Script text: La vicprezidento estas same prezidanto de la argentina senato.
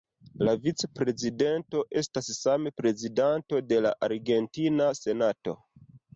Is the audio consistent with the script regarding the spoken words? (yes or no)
yes